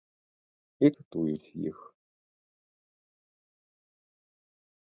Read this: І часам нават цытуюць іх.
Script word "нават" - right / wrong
wrong